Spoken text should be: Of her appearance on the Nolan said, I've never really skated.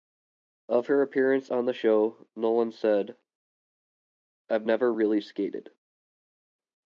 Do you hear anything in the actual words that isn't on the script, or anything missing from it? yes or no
yes